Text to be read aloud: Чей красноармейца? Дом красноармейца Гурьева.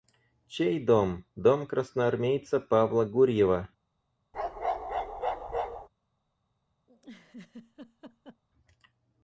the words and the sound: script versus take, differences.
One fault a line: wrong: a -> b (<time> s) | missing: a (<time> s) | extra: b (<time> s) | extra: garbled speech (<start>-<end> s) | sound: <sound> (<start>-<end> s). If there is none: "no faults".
wrong: красноармейца -> дом (0.8 s)
extra: Павла (2.6 s)
sound: bark (4.3-5.9 s)
sound: laugh (6.9-8.4 s)